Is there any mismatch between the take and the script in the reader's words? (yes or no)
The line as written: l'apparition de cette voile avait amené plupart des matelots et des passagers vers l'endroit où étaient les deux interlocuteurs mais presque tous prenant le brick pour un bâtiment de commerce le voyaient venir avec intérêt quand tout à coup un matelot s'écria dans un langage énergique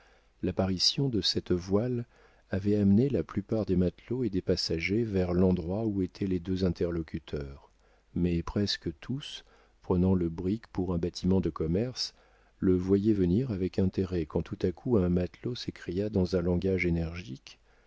yes